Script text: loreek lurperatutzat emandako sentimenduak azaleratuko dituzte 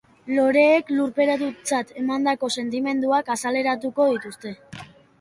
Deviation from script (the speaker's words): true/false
false